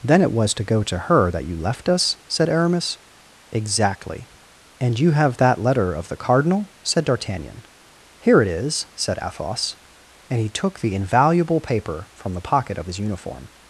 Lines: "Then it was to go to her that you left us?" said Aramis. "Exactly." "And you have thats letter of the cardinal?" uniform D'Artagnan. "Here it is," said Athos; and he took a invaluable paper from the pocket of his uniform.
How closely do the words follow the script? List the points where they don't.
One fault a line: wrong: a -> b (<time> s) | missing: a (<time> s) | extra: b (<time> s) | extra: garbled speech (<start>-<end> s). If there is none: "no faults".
wrong: thats -> that (5.4 s)
wrong: uniform -> said (6.8 s)
wrong: a -> the (10.8 s)